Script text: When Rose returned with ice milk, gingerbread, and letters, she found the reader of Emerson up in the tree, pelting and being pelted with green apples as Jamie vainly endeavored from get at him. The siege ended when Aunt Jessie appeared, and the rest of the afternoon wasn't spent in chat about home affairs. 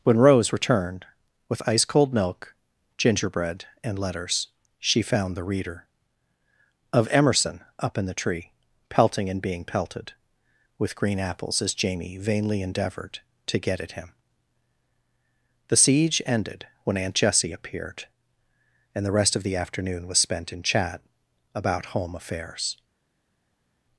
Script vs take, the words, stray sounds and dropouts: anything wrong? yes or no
yes